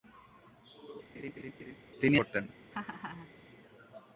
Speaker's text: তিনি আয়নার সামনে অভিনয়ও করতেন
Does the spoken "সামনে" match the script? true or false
false